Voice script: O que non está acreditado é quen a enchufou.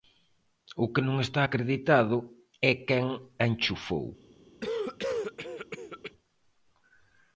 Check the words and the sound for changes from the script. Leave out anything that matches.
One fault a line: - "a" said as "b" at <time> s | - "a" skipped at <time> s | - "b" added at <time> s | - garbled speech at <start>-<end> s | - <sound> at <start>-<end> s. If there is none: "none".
- cough at 4.6-6.1 s